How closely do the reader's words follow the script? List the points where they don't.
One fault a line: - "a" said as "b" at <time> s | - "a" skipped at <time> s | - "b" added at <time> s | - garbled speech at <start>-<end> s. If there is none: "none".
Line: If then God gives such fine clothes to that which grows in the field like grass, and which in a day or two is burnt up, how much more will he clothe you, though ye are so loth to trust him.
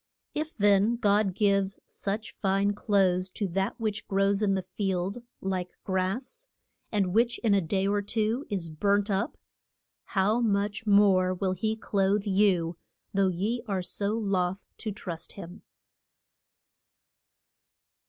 none